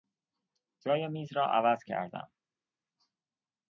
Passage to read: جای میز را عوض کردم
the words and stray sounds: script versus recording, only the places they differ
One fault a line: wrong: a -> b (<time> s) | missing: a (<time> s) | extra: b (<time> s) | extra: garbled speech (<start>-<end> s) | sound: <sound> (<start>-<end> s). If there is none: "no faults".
no faults